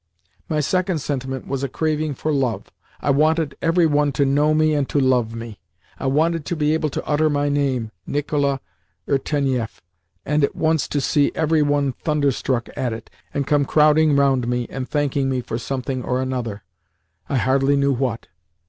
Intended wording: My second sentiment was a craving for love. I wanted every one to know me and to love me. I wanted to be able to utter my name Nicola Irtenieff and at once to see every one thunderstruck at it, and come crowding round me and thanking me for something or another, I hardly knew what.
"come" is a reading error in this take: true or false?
false